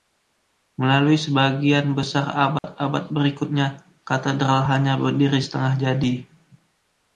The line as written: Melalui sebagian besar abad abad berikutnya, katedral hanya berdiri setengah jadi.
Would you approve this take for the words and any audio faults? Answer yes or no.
no